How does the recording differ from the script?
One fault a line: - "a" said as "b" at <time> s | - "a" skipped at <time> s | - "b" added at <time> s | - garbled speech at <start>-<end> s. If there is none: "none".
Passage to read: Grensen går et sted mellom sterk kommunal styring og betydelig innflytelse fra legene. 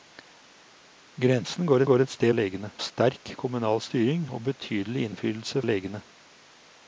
- "går" added at 1.9 s
- "mellom" said as "legene" at 2.3 s
- "fra" skipped at 5.6 s